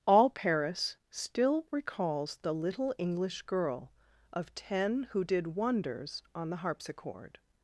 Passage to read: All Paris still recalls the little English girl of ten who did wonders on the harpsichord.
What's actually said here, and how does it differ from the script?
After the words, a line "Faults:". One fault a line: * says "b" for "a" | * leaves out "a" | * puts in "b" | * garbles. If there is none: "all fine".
All Paris still recalls the little English girl of ten who did wonders on the harpsichord.
Faults:
all fine